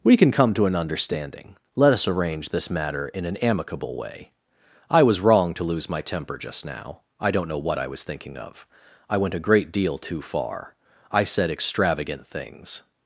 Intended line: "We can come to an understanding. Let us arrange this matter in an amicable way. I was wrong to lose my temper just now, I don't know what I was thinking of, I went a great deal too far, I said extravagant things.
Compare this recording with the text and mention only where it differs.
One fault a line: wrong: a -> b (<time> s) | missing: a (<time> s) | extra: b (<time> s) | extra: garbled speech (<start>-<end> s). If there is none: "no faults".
no faults